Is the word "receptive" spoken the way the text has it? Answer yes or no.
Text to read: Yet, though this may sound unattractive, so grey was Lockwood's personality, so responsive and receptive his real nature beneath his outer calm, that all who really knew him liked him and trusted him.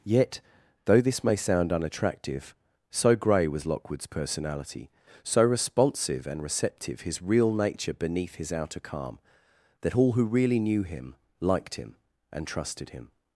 yes